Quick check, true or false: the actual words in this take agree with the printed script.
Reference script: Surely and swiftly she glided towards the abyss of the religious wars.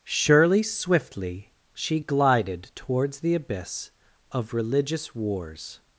false